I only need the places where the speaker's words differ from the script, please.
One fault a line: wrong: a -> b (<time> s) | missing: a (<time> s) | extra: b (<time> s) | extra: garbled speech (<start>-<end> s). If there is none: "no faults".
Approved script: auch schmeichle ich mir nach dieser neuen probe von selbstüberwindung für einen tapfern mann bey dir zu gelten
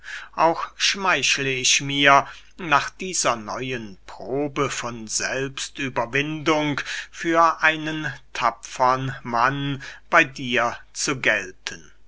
no faults